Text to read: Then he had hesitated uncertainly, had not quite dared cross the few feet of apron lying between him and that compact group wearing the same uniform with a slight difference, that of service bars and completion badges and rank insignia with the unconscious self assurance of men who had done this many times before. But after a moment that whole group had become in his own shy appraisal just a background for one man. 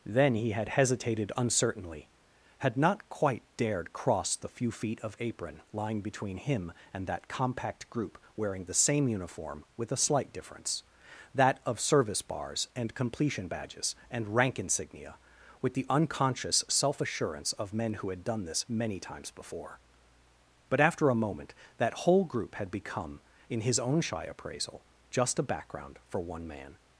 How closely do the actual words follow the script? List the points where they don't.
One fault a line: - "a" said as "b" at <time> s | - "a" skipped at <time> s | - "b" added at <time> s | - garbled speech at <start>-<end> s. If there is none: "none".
none